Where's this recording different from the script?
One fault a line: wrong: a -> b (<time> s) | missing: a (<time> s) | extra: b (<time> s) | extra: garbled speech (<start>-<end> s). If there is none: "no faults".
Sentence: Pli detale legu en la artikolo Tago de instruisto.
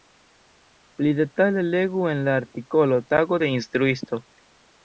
no faults